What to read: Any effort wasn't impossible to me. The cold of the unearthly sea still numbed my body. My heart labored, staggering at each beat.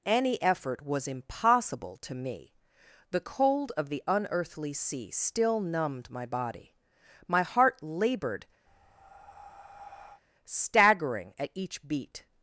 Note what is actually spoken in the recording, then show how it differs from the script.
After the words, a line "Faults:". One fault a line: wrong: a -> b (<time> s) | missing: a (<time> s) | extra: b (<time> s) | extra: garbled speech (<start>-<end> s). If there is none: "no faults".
Any effort was impossible to me. The cold of the unearthly sea still numbed my body. My heart labored, staggering at each beat.
Faults:
wrong: wasn't -> was (0.8 s)